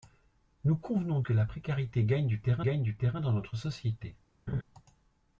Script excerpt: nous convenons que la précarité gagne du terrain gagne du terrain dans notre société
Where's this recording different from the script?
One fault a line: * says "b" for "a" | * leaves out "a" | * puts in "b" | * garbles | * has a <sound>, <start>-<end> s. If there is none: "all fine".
* has a laugh, 4.5-4.6 s